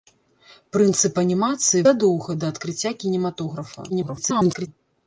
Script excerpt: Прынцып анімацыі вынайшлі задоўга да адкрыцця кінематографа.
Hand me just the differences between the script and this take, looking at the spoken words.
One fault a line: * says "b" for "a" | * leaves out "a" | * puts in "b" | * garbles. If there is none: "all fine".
* leaves out "вынайшлі"
* garbles